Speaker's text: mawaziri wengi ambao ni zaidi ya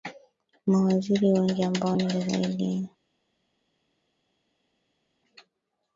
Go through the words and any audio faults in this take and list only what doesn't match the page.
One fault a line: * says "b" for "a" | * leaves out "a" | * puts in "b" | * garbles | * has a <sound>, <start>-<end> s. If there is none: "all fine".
all fine